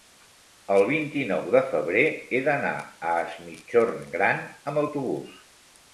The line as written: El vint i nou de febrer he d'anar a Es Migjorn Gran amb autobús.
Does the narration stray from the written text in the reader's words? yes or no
no